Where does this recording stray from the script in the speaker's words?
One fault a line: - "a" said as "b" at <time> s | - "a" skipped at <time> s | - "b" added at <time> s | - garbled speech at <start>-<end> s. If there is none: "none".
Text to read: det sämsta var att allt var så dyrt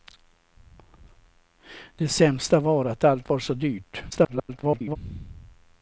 - garbled speech at 4.1-5.0 s